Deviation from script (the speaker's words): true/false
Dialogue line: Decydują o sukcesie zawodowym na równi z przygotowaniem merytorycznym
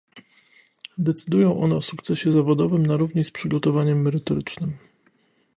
true